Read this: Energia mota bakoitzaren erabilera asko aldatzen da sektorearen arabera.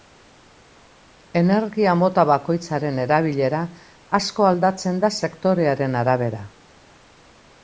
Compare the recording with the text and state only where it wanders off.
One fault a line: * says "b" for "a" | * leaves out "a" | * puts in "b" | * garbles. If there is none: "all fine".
all fine